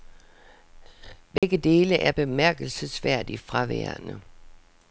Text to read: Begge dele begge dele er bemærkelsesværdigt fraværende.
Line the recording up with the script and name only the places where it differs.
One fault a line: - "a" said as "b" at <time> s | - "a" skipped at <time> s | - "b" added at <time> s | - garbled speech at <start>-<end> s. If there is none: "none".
- "begge dele" skipped at 1.9 s